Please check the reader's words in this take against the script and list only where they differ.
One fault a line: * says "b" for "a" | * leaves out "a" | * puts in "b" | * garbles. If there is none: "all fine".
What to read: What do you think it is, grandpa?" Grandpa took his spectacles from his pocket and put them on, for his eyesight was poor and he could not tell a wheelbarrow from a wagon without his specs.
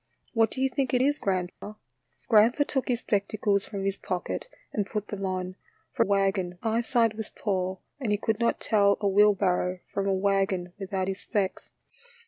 * says "wagon" for "his"